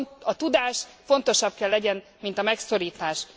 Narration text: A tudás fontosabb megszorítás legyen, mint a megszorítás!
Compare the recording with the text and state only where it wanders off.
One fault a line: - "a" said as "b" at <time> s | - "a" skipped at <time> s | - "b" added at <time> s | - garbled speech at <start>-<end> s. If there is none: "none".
- "megszorítás" said as "kell" at 1.6 s